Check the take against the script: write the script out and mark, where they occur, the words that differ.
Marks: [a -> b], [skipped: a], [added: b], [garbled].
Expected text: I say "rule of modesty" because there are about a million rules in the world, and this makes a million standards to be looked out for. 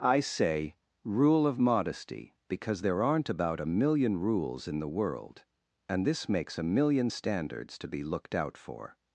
I say "rule of modesty" because there [are -> aren't] about a million rules in the world, and this makes a million standards to be looked out for.